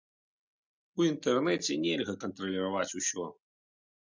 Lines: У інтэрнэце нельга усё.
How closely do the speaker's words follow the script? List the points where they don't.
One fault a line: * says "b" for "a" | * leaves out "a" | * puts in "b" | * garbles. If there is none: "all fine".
* puts in "кантраляваць"